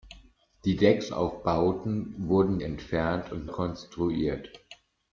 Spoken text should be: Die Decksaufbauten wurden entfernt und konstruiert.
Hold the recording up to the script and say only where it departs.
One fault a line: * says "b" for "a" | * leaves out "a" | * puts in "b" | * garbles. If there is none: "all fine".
all fine